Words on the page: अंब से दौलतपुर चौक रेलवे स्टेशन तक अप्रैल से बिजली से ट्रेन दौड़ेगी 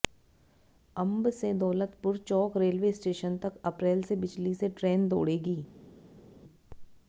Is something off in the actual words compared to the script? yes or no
no